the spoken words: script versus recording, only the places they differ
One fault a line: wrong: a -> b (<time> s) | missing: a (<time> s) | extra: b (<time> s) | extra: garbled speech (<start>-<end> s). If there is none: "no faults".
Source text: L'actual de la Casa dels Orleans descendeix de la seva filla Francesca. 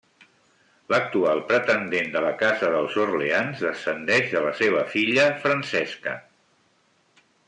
extra: pretendent (1.5 s)